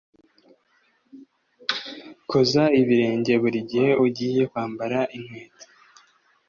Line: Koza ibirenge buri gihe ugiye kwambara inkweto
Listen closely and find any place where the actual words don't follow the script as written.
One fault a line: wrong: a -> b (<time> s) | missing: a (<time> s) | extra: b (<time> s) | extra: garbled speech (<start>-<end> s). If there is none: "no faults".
no faults